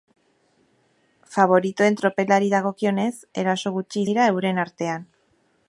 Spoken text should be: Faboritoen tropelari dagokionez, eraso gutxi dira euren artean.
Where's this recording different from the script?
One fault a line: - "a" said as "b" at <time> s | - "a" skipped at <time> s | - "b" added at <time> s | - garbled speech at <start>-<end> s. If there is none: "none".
none